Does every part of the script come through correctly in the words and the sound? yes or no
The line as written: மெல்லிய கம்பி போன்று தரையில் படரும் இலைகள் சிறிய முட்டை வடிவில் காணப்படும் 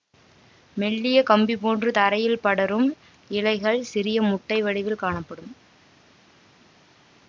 yes